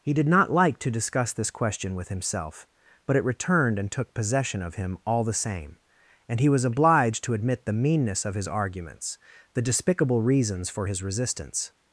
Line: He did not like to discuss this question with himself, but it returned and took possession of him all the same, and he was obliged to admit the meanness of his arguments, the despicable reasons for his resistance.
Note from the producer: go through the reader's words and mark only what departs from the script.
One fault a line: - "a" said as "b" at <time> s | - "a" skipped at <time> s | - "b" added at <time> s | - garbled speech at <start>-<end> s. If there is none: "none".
none